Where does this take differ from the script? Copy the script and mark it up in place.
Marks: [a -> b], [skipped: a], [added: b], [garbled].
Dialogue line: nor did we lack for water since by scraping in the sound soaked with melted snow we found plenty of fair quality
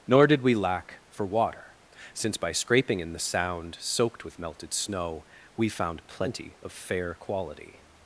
nor did we lack for water since by scraping in the sound soaked with melted snow we found plenty of fair quality